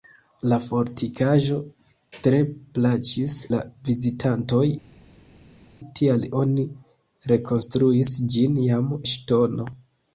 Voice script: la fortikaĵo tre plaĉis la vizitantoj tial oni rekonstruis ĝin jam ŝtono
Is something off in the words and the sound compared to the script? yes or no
no